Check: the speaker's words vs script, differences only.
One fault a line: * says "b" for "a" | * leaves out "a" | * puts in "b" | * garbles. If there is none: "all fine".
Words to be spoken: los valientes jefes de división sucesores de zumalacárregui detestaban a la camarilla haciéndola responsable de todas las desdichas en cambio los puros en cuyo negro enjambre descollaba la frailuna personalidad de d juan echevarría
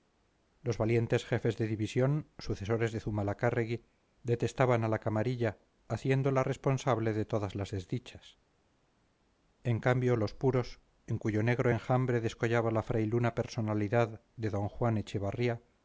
all fine